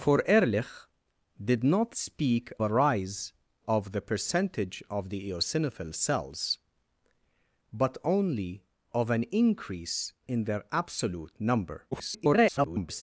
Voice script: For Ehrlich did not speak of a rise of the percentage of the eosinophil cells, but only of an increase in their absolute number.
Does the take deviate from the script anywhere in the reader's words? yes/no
yes